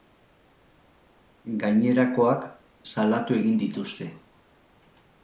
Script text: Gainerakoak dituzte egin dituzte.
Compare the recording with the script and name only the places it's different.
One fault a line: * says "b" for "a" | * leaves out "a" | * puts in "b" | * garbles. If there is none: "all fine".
* says "salatu" for "dituzte"